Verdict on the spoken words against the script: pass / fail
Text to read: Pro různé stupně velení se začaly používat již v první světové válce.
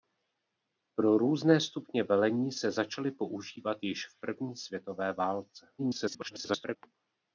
fail